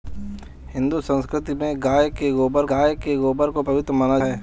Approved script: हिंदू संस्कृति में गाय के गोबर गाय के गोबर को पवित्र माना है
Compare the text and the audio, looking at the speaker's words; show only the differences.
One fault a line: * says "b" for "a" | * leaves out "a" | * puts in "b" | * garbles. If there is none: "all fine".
all fine